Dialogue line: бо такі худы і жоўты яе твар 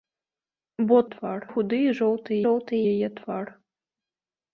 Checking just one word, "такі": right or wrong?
wrong